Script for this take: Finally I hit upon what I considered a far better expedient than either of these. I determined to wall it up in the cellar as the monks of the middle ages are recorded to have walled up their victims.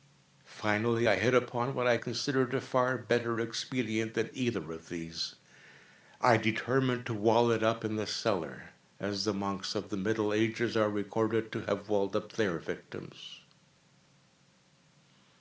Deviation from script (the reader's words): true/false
false